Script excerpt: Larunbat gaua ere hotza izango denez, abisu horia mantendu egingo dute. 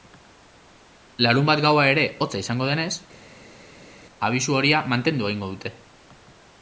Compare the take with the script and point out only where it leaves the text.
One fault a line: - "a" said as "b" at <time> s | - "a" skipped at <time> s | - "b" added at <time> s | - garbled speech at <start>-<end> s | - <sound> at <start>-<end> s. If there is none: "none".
none